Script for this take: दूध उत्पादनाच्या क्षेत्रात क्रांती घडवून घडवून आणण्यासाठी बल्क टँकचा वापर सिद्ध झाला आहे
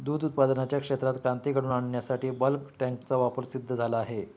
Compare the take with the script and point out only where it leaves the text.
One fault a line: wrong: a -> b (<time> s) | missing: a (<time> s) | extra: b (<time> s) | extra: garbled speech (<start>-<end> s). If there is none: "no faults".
missing: घडवून (1.7 s)